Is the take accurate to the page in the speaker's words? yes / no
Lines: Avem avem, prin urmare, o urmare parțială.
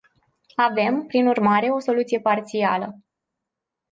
no